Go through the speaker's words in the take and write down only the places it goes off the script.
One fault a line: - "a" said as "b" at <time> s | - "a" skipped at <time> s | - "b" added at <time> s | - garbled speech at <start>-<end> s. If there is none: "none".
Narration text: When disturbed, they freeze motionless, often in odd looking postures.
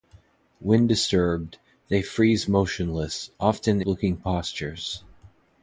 - "in odd" skipped at 3.8 s